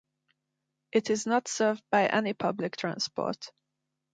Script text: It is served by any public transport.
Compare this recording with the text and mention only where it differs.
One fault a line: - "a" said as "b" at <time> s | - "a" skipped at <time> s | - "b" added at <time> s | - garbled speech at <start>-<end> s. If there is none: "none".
- "not" added at 1.3 s